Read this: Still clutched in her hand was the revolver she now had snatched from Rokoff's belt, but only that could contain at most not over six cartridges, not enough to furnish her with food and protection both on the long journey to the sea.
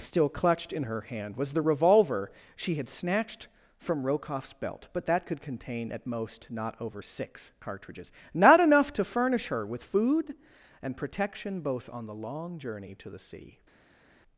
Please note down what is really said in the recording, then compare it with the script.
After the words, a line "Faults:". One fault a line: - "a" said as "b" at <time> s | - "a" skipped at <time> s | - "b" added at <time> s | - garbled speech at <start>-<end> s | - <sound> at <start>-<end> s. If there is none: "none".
Still clutched in her hand was the revolver she had snatched from Rokoff's belt, but that could contain at most not over six cartridges, not enough to furnish her with food and protection both on the long journey to the sea.
Faults:
- "now" skipped at 2.8 s
- "only" skipped at 5.1 s